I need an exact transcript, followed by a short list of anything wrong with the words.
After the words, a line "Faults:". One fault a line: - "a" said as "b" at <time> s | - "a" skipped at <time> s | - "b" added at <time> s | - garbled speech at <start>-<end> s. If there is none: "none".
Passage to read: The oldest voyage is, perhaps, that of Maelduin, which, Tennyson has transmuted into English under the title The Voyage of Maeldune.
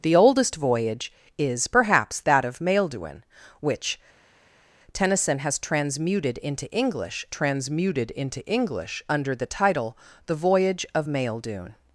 The oldest voyage is, perhaps, that of Maelduin, which, Tennyson has transmuted into English transmuted into English under the title The Voyage of Maeldune.
Faults:
- "transmuted into English" added at 7.3 s